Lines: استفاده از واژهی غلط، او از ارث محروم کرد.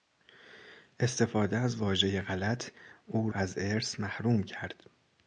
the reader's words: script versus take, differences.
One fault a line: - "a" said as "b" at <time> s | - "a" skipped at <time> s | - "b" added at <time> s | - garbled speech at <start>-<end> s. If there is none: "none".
none